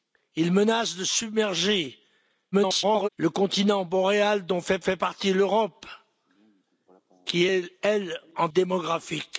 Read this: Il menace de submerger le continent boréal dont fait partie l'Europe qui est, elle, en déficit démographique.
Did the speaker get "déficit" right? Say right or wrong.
wrong